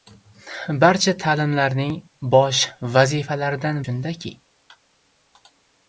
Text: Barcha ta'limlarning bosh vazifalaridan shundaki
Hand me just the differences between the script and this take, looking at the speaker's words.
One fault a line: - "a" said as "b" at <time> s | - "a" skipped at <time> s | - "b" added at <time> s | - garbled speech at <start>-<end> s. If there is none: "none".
none